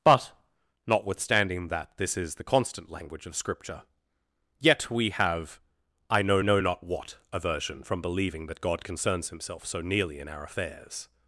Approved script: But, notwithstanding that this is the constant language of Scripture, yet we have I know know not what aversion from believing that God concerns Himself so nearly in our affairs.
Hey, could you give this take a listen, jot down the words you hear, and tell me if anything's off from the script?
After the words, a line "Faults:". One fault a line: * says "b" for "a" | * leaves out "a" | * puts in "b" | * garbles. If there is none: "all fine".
But, notwithstanding that this is the constant language of Scripture, yet we have I know know not what aversion from believing that God concerns Himself so nearly in our affairs.
Faults:
all fine